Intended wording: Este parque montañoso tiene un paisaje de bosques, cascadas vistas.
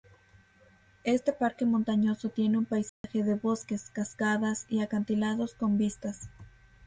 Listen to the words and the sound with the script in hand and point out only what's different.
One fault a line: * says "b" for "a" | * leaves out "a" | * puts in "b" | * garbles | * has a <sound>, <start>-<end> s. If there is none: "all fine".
* has a dropout, 2.9-3.0 s
* puts in "y acantilados con"